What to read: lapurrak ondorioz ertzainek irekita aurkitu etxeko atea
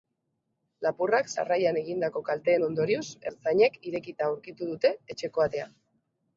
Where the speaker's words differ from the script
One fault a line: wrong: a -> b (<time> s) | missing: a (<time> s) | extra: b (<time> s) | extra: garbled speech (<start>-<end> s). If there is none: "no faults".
extra: sarrailan egindako kalteen (1.3 s)
extra: dute (4.7 s)